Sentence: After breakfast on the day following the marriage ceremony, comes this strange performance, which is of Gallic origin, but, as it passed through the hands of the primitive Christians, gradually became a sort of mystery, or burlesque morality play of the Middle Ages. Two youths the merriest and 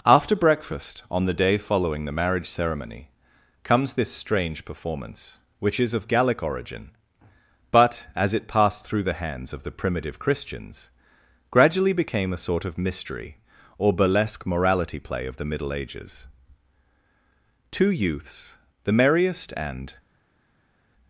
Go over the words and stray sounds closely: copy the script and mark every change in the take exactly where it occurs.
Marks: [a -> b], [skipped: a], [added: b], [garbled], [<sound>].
After breakfast on the day following the marriage ceremony, comes this strange performance, which is of Gallic origin, but, as it passed through the hands of the primitive Christians, gradually became a sort of mystery, or burlesque morality play of the Middle Ages. Two youths the merriest and